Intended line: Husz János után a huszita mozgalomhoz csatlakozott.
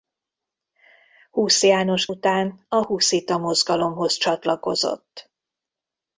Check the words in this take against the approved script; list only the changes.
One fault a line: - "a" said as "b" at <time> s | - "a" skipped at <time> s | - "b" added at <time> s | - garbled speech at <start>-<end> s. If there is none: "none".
none